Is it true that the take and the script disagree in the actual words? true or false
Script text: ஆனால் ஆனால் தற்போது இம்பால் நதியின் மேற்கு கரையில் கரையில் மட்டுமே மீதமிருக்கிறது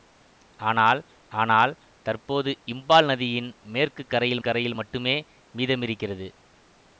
false